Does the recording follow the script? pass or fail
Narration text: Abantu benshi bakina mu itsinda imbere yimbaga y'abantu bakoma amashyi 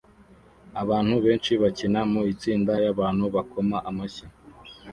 fail